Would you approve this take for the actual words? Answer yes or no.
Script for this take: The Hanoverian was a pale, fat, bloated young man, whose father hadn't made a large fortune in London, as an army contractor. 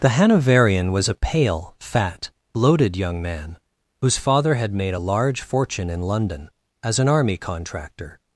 no